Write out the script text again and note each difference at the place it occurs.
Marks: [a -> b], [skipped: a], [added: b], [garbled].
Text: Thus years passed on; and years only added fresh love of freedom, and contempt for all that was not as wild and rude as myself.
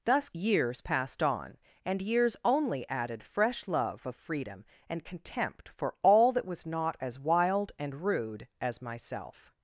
Thus years passed on; and years only added fresh love of freedom, and contempt for all that was not as wild and rude as myself.